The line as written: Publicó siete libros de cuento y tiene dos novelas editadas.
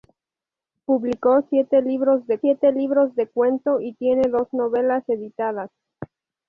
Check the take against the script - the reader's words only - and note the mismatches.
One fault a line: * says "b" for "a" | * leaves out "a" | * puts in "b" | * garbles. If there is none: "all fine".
* puts in "siete libros de"